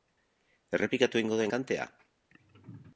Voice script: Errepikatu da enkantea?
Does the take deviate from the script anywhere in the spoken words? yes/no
yes